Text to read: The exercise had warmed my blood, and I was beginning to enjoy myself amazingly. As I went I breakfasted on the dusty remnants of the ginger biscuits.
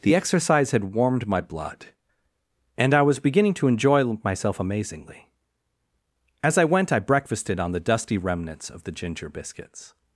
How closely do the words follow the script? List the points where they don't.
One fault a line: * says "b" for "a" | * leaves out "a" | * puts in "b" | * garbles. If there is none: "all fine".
all fine